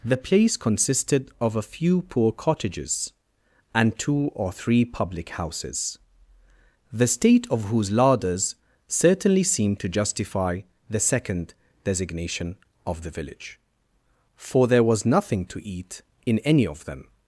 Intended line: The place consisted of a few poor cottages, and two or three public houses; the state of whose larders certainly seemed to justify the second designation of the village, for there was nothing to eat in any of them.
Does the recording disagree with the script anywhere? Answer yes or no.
no